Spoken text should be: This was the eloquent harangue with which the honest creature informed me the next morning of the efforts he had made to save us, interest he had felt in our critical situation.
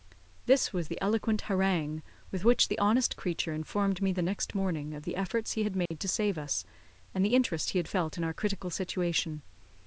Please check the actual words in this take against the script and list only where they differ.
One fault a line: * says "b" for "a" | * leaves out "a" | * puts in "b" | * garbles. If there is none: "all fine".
* puts in "and the"